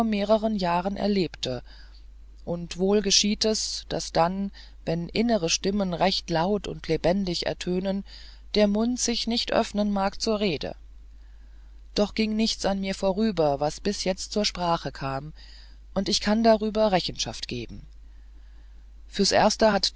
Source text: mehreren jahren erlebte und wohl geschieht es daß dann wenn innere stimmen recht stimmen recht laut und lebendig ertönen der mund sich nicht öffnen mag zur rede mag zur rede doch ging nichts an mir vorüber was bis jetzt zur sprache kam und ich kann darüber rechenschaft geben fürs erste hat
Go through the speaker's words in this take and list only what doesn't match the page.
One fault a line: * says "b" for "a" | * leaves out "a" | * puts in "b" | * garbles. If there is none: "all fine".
* leaves out "stimmen recht"
* leaves out "mag zur rede"